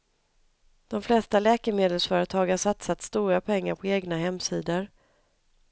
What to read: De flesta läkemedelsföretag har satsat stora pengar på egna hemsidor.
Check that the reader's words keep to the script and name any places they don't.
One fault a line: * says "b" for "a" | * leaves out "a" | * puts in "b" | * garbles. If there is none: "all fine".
all fine